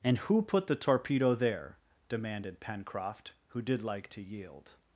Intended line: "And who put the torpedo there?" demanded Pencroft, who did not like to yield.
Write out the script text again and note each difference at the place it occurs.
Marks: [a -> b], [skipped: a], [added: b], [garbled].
"And who put the torpedo there?" demanded Pencroft, who did [skipped: not] like to yield.